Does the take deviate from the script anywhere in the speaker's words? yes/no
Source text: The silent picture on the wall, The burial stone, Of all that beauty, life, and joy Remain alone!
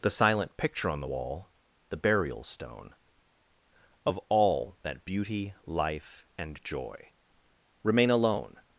no